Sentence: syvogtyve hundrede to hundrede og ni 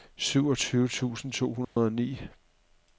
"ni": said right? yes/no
yes